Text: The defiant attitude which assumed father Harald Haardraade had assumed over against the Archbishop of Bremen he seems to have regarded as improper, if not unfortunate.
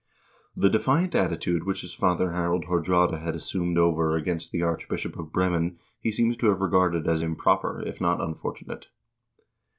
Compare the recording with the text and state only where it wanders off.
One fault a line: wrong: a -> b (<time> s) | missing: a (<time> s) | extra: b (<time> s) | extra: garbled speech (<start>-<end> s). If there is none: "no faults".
wrong: assumed -> his (1.8 s)